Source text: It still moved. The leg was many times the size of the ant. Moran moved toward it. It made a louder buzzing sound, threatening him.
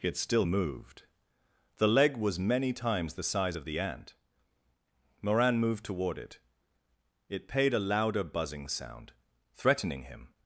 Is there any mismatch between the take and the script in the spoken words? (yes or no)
yes